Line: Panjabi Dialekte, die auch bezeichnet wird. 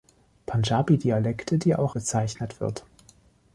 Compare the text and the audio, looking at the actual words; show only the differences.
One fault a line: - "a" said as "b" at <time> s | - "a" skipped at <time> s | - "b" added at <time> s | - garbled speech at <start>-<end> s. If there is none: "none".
none